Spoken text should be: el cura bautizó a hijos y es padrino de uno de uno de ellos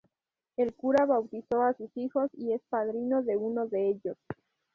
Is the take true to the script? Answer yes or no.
no